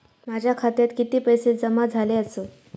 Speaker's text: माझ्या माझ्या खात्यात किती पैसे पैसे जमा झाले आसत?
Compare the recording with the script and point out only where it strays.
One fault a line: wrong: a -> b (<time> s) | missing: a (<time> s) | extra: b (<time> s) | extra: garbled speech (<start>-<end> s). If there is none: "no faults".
missing: माझ्या (0.5 s)
missing: पैसे (1.5 s)